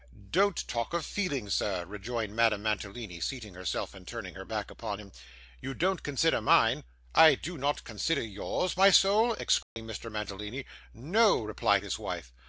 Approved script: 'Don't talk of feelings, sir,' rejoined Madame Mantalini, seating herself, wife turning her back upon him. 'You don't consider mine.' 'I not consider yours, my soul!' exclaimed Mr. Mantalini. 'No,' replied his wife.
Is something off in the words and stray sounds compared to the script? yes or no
yes